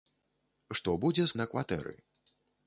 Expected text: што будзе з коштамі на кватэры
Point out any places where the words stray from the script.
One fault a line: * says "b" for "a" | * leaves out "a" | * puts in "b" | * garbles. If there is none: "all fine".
* leaves out "коштамі"